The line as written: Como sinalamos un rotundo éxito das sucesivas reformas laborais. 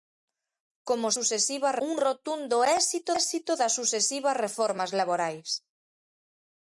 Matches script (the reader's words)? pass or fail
fail